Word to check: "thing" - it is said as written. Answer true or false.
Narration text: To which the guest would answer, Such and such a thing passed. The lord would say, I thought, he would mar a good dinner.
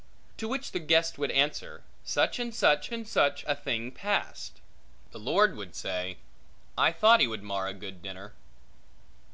true